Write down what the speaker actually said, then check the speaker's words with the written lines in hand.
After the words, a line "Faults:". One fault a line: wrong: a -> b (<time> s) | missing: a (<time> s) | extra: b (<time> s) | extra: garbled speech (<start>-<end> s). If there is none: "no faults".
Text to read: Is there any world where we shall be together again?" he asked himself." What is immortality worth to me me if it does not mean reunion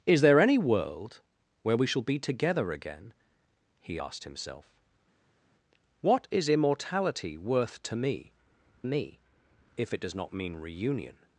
Is there any world where we shall be together again?" he asked himself." What is immortality worth to me me if it does not mean reunion
Faults:
no faults